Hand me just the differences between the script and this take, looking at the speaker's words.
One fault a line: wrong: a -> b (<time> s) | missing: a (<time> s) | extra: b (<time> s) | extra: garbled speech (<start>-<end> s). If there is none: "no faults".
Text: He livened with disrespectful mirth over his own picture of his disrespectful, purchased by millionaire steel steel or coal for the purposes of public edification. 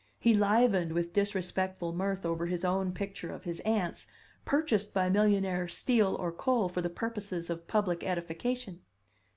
wrong: disrespectful -> aunts (3.6 s)
missing: steel (6.1 s)